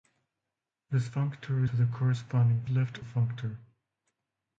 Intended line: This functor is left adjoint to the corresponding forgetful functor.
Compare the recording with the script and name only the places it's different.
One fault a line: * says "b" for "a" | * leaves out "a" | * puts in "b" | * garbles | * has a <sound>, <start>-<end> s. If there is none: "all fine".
* leaves out "is left adjoint"
* says "left" for "forgetful"